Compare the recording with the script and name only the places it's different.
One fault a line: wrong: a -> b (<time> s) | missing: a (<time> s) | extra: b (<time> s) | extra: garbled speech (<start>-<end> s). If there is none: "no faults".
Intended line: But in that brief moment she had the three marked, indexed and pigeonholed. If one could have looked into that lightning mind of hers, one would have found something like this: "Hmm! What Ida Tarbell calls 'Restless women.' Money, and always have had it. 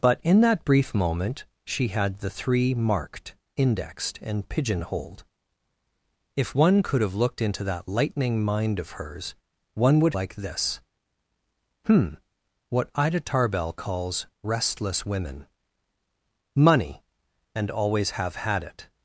missing: have found something (10.2 s)